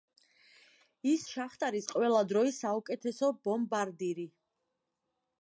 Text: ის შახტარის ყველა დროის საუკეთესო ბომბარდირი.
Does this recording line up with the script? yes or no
yes